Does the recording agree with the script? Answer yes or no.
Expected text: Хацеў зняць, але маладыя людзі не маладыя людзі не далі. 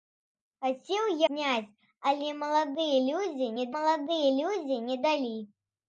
yes